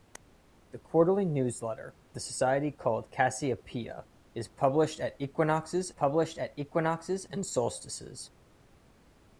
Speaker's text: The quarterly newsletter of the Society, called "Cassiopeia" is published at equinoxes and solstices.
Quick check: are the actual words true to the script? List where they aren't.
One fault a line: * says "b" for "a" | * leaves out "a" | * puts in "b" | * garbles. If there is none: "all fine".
* leaves out "of"
* puts in "published at equinoxes"